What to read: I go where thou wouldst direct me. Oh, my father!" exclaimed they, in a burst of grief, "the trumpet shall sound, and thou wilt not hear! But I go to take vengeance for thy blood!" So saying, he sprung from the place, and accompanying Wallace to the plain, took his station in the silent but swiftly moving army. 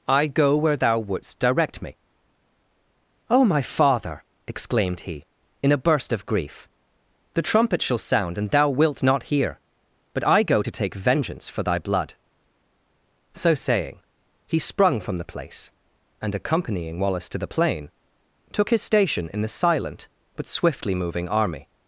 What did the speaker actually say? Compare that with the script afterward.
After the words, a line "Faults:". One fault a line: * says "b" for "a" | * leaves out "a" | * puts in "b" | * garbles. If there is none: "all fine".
I go where thou wouldst direct me. Oh, my father!" exclaimed he, in a burst of grief, "the trumpet shall sound, and thou wilt not hear! But I go to take vengeance for thy blood!" So saying, he sprung from the place, and accompanying Wallace to the plain, took his station in the silent but swiftly moving army.
Faults:
* says "he" for "they"